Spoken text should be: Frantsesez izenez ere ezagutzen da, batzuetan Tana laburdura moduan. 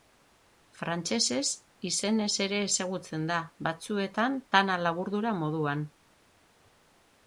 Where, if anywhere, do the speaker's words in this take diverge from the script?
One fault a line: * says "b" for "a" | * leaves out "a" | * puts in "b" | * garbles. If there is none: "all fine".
all fine